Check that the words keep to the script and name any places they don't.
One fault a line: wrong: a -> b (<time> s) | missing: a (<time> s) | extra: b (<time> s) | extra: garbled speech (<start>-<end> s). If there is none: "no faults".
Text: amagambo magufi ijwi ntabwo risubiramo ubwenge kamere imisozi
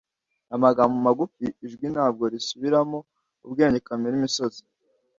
no faults